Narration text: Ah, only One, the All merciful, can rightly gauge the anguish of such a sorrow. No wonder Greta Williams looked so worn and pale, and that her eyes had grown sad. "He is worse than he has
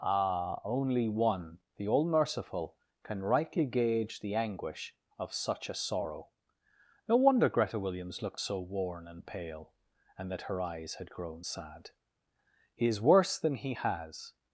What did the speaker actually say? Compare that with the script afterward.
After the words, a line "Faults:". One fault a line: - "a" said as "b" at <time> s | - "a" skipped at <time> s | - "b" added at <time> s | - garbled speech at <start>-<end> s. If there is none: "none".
Ah, only One, the All merciful, can rightly gauge the anguish of such a sorrow. No wonder Greta Williams looked so worn and pale, and that her eyes had grown sad. "He is worse than he has
Faults:
none